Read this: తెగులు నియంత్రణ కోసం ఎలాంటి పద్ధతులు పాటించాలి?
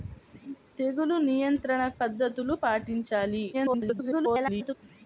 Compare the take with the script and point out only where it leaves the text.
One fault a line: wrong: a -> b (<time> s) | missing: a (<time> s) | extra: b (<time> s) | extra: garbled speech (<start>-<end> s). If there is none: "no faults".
missing: కోసం ఎలాంటి (1.8 s)
extra: garbled speech (3.5-4.7 s)